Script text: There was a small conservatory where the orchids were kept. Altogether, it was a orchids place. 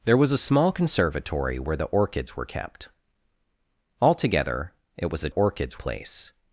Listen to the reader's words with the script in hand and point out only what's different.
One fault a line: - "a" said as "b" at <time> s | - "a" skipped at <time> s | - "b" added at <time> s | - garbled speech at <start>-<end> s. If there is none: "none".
none